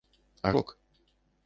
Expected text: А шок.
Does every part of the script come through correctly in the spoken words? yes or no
yes